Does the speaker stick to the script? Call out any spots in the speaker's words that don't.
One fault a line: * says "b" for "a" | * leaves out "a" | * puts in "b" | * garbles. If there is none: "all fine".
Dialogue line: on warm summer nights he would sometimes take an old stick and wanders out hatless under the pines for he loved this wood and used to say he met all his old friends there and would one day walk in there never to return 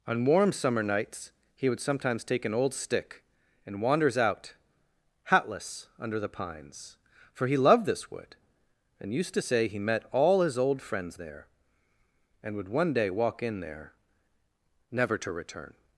all fine